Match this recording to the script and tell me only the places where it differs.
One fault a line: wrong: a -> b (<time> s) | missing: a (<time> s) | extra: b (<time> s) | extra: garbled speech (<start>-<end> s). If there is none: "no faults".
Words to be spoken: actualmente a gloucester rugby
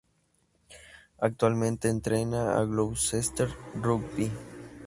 extra: entrena (1.9 s)